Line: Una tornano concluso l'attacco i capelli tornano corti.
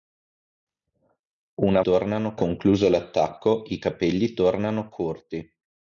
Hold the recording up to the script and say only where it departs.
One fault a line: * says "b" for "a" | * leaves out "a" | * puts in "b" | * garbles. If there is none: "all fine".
all fine